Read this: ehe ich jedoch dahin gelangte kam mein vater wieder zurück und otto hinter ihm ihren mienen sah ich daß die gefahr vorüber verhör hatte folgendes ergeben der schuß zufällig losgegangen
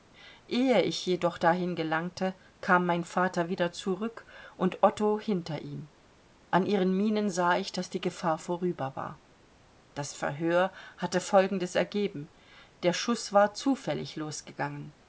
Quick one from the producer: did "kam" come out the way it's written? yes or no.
yes